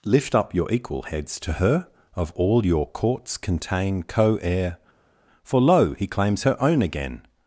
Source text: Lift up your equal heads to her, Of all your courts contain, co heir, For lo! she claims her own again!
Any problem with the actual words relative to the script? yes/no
yes